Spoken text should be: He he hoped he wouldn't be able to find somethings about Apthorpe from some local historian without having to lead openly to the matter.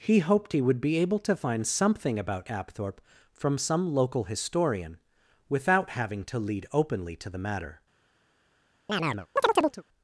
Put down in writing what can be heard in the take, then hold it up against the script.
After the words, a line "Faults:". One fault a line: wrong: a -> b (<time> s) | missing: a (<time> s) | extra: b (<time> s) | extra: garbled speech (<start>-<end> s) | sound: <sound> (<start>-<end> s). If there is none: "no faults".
He hoped he would be able to find something about Apthorpe from some local historian without having to lead openly to the matter.
Faults:
missing: he (0.2 s)
wrong: wouldn't -> would (0.6 s)
wrong: somethings -> something (1.7 s)
sound: chirp (8.9-9.8 s)